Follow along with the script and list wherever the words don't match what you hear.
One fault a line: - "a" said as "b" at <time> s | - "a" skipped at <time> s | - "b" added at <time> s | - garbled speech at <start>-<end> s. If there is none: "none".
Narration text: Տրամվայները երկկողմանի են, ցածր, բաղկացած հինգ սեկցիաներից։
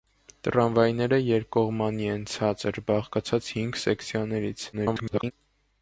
- garbled speech at 4.7-5.3 s